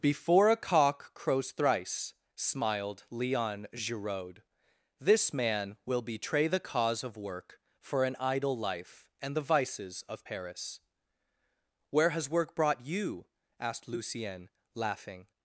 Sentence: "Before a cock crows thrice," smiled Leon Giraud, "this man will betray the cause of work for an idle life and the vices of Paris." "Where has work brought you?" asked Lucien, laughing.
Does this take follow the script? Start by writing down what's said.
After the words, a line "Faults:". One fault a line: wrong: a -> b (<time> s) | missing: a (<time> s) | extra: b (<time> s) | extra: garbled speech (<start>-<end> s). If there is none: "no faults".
"Before a cock crows thrice," smiled Leon Giraud, "this man will betray the cause of work for an idle life and the vices of Paris." "Where has work brought you?" asked Lucien, laughing.
Faults:
no faults